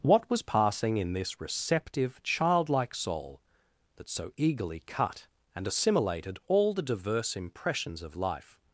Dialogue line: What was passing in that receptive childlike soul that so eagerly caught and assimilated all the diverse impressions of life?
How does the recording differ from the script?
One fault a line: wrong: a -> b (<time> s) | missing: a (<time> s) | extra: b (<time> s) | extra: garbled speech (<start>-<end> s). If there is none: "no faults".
wrong: that -> this (1.1 s)
wrong: caught -> cut (4.9 s)